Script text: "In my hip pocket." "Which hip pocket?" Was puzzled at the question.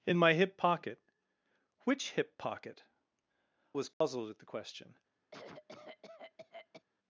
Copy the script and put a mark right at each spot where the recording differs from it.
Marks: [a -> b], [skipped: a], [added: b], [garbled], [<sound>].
"In my hip pocket." "Which hip pocket?" Was puzzled [dropout] at the question. [cough]